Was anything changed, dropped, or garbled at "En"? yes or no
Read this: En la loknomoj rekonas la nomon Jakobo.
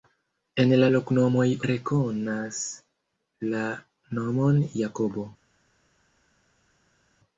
no